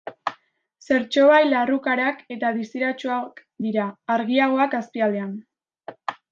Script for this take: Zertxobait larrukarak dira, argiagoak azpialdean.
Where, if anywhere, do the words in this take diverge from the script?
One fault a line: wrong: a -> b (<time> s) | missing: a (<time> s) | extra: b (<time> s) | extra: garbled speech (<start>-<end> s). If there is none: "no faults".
extra: eta distiratsuak (2.4 s)